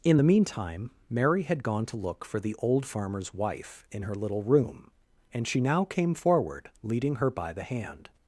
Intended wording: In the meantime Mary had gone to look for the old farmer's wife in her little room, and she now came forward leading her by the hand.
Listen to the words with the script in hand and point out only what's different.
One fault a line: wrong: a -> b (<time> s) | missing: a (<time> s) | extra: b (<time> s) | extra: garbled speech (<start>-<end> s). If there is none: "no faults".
no faults